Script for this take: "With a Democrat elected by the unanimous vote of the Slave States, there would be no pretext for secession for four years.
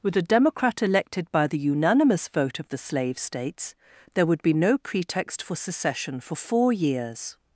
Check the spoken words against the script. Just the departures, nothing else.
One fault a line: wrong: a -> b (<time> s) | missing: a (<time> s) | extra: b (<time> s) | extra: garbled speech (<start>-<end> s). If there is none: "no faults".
no faults